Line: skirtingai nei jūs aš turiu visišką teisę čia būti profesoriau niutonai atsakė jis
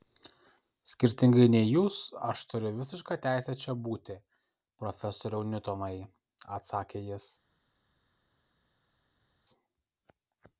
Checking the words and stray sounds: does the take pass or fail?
pass